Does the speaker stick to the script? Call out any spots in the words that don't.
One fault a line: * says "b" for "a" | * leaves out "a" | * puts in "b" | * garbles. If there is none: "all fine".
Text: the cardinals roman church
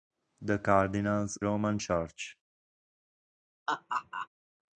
all fine